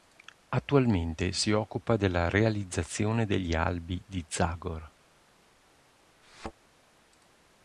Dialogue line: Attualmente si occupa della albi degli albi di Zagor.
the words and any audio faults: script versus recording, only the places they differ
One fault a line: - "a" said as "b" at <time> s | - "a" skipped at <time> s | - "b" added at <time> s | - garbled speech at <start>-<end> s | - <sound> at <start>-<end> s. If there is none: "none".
- "albi" said as "realizzazione" at 2.3 s
- thud at 6.2-6.5 s